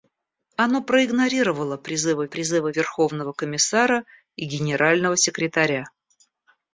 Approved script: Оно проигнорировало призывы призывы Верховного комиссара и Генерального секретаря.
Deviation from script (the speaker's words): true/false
false